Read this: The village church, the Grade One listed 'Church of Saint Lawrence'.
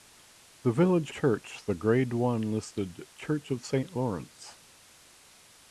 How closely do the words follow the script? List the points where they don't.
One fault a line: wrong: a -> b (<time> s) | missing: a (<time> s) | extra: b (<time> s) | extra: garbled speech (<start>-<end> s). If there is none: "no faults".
no faults